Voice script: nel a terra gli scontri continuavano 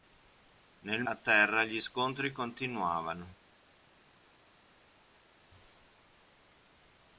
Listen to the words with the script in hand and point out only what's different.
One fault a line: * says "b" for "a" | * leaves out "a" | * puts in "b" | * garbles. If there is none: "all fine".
all fine